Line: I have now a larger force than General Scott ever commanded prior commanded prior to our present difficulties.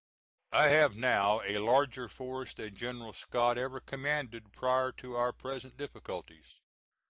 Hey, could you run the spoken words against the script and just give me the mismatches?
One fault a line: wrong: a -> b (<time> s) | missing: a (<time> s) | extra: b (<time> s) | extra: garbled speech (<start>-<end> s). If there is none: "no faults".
missing: commanded prior (4.9 s)